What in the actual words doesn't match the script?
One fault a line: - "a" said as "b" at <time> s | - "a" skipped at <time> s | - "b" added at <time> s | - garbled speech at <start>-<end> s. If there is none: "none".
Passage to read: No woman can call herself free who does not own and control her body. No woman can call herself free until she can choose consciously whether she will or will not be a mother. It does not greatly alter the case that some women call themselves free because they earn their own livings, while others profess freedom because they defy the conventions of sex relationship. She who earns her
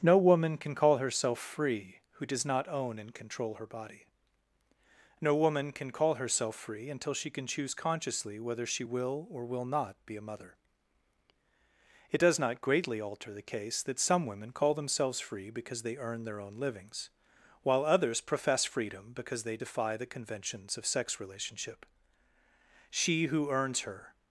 none